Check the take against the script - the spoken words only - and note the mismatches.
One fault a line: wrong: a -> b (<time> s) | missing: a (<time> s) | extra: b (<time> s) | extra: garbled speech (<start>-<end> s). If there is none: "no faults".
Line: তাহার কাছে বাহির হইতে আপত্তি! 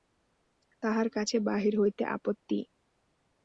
no faults